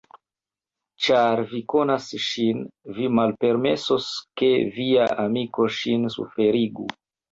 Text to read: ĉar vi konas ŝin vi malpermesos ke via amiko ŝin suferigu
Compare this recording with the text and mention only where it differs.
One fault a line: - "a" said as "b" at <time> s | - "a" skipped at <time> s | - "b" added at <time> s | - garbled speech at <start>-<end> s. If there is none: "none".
none